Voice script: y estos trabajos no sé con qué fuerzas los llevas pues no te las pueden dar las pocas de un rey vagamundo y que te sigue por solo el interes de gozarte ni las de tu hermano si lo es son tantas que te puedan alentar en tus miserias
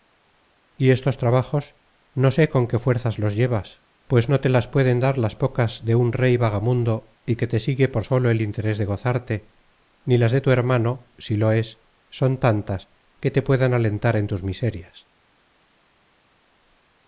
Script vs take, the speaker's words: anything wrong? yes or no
no